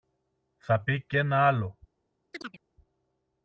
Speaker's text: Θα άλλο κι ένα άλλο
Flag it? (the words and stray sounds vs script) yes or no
yes